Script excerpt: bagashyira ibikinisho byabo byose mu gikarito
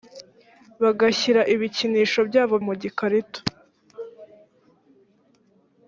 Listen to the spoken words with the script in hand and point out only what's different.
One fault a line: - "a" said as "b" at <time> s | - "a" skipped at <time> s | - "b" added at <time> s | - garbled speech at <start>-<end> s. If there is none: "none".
- "byose" skipped at 2.5 s